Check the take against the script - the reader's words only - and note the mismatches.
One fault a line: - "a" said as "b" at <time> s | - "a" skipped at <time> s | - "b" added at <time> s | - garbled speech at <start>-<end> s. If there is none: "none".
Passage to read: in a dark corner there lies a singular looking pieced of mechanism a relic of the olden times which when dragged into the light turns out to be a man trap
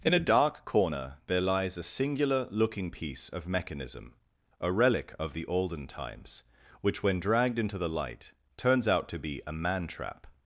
- "pieced" said as "piece" at 2.9 s